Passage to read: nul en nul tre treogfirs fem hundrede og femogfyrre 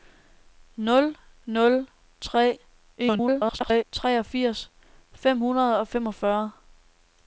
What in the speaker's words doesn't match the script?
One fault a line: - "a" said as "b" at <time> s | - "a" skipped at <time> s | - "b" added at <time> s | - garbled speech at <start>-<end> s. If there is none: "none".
- "en" skipped at 1.2 s
- garbled speech at 3.0-3.8 s